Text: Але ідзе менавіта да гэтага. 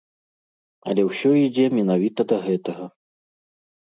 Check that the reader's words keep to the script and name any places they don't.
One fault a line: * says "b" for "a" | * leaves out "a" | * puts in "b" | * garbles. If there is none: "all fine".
* puts in "ўсё"